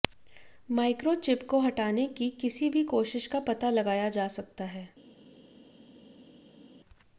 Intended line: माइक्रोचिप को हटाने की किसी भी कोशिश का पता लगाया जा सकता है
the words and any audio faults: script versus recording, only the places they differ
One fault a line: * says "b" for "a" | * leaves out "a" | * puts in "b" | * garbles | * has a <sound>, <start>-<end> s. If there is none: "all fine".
all fine